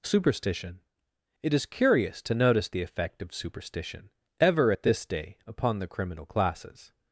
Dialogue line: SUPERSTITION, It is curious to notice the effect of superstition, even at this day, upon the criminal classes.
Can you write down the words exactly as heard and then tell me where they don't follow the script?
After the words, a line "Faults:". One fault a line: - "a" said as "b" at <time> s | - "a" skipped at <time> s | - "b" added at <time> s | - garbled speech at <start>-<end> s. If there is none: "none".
SUPERSTITION, It is curious to notice the effect of superstition, ever at this day, upon the criminal classes.
Faults:
- "even" said as "ever" at 4.4 s